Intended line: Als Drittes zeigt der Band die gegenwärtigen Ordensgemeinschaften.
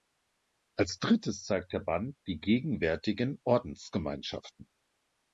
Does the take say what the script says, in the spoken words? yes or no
yes